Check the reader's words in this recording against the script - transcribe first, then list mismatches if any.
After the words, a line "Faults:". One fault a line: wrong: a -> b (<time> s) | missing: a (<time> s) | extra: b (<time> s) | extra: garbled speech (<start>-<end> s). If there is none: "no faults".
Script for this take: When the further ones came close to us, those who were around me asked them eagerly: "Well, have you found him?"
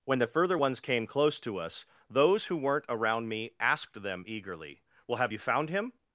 When the further ones came close to us, those who weren't around me asked them eagerly: "Well, have you found him?"
Faults:
wrong: were -> weren't (2.6 s)